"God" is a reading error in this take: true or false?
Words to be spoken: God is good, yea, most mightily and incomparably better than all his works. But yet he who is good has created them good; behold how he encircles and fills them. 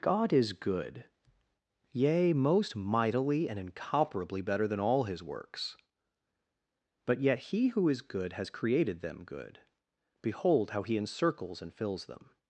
false